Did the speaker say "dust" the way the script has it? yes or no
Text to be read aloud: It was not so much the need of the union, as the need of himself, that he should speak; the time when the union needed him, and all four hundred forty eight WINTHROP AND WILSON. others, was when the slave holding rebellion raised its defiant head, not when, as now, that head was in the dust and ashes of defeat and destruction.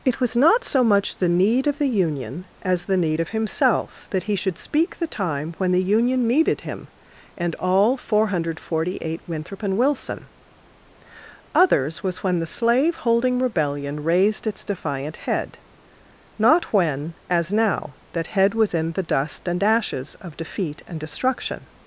yes